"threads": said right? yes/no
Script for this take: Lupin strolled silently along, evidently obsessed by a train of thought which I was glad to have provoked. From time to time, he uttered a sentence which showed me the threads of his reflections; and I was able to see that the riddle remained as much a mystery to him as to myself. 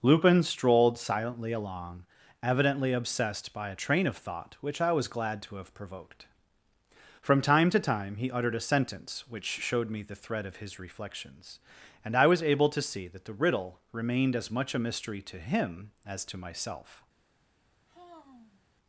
no